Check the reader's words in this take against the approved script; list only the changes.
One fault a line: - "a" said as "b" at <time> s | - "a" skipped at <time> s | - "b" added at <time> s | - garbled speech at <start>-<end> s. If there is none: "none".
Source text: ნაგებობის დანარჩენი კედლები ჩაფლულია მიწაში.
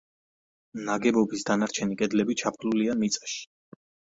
none